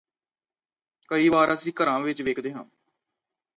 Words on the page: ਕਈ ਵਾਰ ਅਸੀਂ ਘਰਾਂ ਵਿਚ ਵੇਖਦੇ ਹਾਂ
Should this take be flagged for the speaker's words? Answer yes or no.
no